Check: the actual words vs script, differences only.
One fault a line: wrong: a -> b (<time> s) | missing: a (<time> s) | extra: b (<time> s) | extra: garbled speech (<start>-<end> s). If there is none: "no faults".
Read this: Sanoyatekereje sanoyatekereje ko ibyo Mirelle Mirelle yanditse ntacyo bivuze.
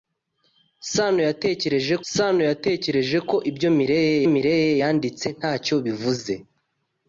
no faults